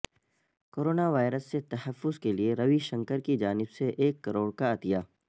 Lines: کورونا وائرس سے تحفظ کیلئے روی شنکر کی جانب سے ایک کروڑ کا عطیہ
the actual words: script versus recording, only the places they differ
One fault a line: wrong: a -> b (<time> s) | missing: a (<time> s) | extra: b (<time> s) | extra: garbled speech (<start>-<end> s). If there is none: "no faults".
no faults